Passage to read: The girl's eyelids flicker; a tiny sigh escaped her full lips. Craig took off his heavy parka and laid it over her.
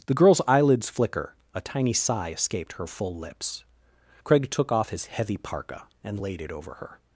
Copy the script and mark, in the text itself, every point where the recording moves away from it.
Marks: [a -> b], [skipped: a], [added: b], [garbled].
The girl's eyelids flicker; a tiny sigh escaped her full lips. Craig took off his heavy parka and laid it over her.